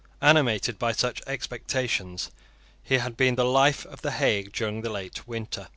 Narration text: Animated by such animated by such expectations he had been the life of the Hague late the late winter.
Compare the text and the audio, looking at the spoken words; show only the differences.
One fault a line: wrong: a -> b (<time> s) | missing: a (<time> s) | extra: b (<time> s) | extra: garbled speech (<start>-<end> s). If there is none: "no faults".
missing: animated by such (1.2 s)
wrong: late -> during (4.5 s)